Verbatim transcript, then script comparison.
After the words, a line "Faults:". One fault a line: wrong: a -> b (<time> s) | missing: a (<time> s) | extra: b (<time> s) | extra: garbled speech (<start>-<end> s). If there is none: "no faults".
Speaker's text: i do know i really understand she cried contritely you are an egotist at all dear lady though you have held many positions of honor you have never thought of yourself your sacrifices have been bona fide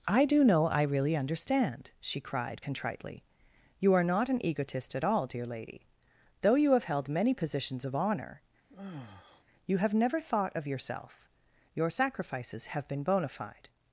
i do know i really understand she cried contritely you are not an egotist at all dear lady though you have held many positions of honor you have never thought of yourself your sacrifices have been bona fide
Faults:
extra: not (4.0 s)